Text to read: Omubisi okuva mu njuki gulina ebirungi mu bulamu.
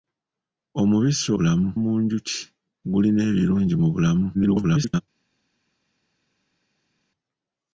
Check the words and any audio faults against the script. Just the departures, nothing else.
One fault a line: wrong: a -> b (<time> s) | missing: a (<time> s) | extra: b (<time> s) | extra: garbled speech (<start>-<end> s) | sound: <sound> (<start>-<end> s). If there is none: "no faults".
wrong: okuva -> bulamu (1.4 s)
extra: garbled speech (4.3-5.0 s)